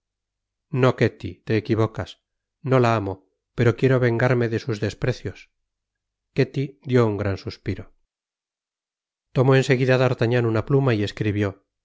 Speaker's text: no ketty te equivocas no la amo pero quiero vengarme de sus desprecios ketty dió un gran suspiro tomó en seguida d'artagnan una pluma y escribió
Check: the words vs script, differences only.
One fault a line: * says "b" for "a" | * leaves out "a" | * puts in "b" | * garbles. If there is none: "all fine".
all fine